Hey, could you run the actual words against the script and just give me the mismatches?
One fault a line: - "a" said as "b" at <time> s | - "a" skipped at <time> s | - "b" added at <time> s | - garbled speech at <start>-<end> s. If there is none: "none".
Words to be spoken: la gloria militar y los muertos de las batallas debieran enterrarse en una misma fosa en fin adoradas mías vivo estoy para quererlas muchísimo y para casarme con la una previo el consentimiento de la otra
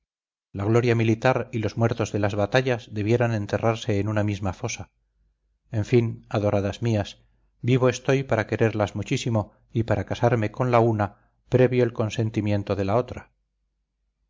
none